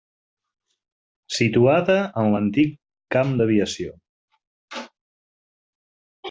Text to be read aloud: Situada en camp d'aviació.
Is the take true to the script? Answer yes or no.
no